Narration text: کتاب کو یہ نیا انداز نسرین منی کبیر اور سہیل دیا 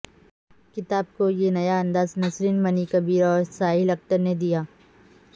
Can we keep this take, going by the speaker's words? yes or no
no